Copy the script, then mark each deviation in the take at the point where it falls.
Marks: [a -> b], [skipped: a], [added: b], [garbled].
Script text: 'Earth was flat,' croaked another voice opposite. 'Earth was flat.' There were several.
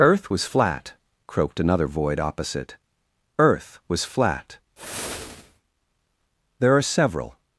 'Earth was flat,' croaked another [voice -> void] opposite. 'Earth was flat.' There [were -> are] several.